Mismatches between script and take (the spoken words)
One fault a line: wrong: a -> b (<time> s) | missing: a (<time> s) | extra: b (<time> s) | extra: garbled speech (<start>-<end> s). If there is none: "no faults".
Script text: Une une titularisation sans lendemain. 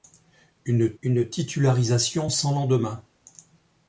no faults